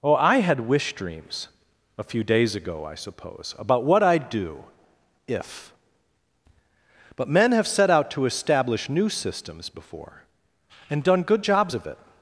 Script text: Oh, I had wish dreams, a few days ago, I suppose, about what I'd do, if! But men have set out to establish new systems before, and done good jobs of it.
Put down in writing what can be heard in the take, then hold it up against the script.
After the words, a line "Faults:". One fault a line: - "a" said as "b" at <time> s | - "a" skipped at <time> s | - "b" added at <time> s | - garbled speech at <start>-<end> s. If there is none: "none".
Oh, I had wish dreams, a few days ago, I suppose, about what I'd do, if! But men have set out to establish new systems before, and done good jobs of it.
Faults:
none